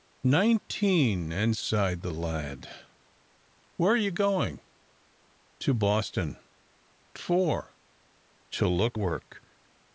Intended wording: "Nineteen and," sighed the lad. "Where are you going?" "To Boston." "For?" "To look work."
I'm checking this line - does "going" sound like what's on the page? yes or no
yes